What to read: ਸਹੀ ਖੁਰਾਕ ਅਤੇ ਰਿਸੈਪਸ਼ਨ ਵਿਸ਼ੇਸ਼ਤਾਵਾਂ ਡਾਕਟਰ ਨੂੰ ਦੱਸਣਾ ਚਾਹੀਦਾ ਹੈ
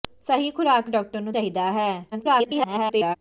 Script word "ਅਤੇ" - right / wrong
wrong